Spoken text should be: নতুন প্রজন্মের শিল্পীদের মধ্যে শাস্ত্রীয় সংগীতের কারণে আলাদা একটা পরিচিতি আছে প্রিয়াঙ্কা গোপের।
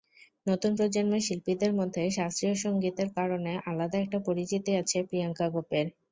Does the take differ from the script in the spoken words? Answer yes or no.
no